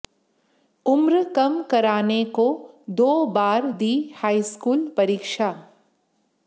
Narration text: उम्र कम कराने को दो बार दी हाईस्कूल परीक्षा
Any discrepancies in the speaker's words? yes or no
no